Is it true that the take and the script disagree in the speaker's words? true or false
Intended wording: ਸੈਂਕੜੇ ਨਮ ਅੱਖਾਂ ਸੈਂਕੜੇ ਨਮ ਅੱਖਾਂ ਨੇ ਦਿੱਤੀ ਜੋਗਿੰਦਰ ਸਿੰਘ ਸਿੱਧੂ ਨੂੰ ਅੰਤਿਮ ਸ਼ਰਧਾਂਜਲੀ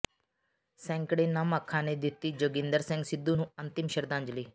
true